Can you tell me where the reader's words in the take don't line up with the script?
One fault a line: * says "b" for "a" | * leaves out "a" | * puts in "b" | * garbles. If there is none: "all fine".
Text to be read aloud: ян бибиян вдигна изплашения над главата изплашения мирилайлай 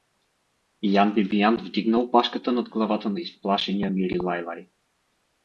* says "опашката" for "изплашения"
* puts in "на"